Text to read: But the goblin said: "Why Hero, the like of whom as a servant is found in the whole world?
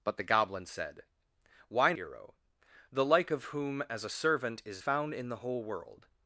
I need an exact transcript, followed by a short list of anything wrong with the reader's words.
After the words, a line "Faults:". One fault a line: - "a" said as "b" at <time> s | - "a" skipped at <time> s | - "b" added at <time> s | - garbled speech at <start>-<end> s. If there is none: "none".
But the goblin said: "Why Hero, the like of whom as a servant is found in the whole world?
Faults:
none